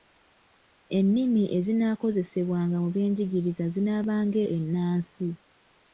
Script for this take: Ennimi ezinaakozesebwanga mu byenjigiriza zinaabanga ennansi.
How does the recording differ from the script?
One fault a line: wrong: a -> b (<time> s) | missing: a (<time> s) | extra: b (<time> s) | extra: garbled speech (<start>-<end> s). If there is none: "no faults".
no faults